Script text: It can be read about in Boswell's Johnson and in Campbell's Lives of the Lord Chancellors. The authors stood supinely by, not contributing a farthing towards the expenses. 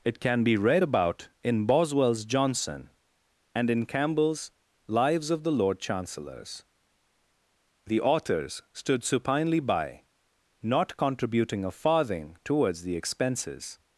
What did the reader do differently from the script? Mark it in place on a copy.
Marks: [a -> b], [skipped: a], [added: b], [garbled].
It can be read about in Boswell's Johnson and in Campbell's Lives of the Lord Chancellors. The authors stood supinely by, not contributing a farthing towards the expenses.